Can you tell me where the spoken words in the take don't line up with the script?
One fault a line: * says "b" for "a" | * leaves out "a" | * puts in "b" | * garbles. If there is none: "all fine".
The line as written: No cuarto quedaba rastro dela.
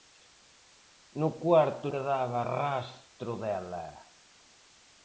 all fine